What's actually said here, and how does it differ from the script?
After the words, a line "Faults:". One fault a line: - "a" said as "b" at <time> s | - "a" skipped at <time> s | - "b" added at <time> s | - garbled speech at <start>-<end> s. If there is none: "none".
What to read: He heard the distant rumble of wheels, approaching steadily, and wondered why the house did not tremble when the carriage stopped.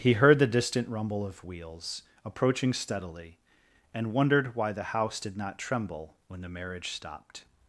He heard the distant rumble of wheels, approaching steadily, and wondered why the house did not tremble when the marriage stopped.
Faults:
- "carriage" said as "marriage" at 6.5 s